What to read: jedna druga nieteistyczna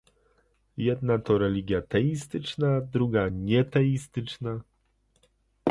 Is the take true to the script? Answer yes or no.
no